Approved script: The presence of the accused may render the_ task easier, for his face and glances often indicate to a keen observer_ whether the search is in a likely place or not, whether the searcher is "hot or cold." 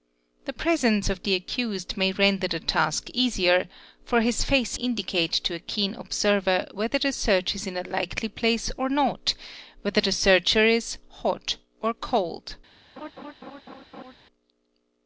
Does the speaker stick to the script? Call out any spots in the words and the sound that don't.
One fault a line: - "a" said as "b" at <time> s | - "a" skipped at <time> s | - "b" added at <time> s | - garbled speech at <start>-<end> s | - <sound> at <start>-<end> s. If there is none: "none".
- "and glances often" skipped at 4.8 s
- laugh at 13.0-14.1 s